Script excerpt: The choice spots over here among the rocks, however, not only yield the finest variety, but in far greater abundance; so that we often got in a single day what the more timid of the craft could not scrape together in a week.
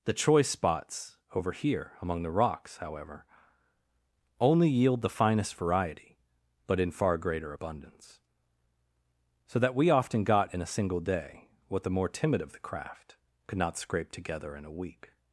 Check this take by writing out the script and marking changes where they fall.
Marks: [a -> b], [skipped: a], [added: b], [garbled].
The choice spots over here among the rocks, however, [skipped: not] only yield the finest variety, but in far greater abundance; so that we often got in a single day what the more timid of the craft could not scrape together in a week.